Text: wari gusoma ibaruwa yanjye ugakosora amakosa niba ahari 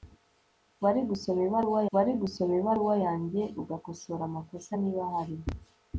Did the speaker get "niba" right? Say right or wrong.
right